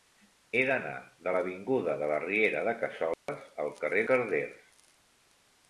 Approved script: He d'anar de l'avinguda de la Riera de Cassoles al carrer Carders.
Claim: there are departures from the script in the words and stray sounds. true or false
true